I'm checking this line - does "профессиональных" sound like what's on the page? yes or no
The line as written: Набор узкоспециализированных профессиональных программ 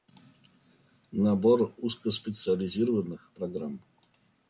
no